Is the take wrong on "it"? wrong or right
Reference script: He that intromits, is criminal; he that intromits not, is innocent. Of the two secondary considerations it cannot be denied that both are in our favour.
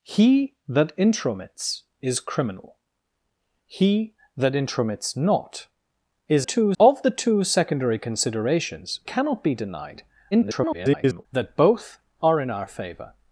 wrong